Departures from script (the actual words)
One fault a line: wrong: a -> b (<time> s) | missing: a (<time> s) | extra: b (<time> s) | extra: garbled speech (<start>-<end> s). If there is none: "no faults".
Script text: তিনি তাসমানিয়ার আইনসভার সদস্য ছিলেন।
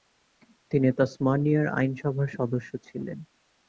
no faults